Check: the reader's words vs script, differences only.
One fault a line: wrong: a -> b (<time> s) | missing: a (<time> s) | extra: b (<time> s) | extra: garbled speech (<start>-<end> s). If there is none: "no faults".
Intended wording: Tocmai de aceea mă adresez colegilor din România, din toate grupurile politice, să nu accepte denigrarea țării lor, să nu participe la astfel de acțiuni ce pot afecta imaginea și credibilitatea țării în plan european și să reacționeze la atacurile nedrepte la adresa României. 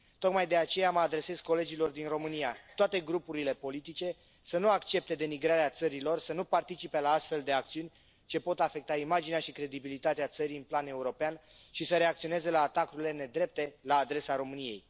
missing: din (2.6 s)